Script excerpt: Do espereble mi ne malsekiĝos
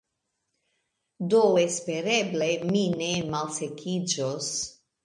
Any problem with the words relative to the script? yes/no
no